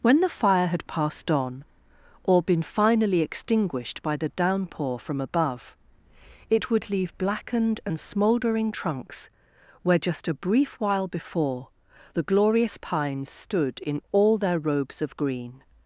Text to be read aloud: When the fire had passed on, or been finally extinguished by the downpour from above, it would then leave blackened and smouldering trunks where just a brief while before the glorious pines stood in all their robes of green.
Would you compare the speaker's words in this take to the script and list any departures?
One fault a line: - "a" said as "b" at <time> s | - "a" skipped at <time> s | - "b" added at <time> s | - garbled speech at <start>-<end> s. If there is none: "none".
- "then" skipped at 6.9 s